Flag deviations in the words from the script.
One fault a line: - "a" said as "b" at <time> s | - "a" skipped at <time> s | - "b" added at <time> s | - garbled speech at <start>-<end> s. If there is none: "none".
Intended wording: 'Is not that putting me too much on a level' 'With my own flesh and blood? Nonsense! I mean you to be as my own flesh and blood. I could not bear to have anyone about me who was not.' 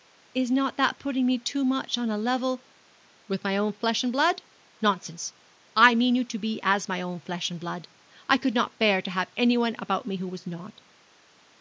none